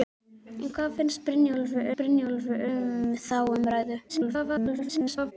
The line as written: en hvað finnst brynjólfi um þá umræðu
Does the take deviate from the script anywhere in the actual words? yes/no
yes